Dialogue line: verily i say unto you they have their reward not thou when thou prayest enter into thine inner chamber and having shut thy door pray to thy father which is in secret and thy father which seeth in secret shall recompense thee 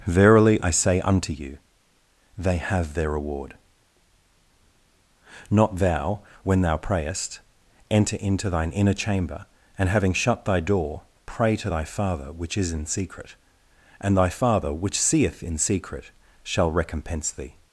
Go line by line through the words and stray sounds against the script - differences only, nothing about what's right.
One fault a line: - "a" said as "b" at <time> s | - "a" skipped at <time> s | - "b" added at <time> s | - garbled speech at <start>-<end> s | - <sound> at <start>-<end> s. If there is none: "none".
none